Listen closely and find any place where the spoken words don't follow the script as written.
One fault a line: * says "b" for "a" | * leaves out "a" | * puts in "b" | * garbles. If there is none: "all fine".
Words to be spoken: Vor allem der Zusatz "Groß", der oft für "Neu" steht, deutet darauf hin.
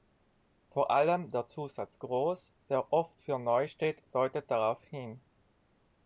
all fine